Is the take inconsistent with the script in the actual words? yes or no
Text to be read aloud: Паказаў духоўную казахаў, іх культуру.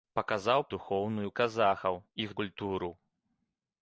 no